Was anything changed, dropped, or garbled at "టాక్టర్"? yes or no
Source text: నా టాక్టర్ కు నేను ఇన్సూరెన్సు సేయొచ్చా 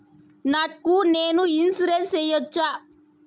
yes